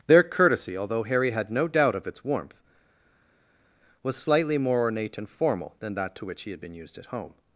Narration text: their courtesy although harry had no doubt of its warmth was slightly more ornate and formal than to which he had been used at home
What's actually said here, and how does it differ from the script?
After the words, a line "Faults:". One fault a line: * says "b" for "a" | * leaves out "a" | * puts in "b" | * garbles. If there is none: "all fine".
their courtesy although harry had no doubt of its warmth was slightly more ornate and formal than that to which he had been used at home
Faults:
* puts in "that"